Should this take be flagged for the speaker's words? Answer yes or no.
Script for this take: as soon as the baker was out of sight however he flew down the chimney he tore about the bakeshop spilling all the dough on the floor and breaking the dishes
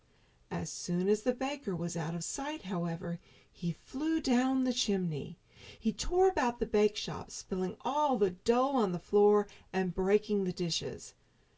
no